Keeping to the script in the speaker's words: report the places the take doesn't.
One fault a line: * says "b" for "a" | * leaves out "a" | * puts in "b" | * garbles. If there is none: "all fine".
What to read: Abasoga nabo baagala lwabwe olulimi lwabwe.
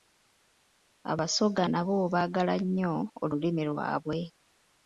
* says "nnyo" for "lwabwe"